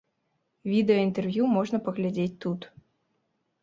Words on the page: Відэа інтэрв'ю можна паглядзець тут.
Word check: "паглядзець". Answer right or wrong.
right